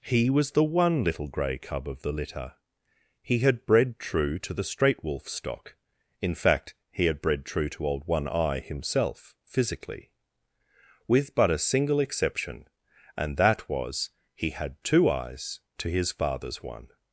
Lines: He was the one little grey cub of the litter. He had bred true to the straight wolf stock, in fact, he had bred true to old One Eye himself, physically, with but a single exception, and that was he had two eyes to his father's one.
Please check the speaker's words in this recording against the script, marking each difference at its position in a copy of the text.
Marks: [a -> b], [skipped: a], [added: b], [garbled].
He was the one little grey cub of the litter. He had bred true to the straight wolf stock, in fact, he had bred true to old One Eye himself, physically, with but a single exception, and that was he had two eyes to his father's one.